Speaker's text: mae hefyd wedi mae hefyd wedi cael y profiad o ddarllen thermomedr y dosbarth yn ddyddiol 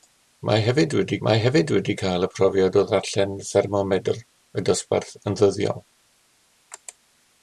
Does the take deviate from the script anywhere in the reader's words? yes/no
no